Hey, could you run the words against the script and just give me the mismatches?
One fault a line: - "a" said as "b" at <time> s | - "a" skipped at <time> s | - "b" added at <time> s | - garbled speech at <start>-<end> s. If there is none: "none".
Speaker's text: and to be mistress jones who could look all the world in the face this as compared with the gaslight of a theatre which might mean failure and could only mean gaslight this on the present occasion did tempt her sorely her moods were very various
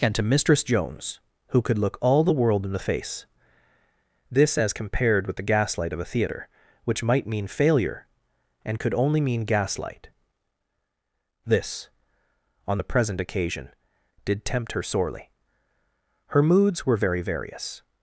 - "be" skipped at 0.2 s